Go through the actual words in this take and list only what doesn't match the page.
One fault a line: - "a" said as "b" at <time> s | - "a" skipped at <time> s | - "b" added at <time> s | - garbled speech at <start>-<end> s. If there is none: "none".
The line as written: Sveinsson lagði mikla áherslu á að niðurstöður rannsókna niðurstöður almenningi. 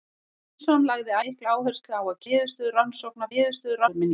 none